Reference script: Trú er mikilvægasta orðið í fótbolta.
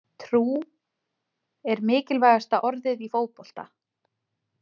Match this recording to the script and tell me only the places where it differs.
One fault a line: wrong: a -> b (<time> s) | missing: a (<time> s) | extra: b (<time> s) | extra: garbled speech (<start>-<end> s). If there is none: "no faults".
no faults